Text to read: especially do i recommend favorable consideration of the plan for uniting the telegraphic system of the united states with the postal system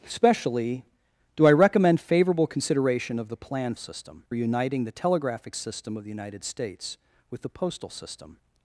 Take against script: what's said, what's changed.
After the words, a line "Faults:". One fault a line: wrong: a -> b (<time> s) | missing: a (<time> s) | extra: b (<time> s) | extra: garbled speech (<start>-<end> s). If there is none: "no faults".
especially do i recommend favorable consideration of the plan system uniting the telegraphic system of the united states with the postal system
Faults:
wrong: for -> system (3.8 s)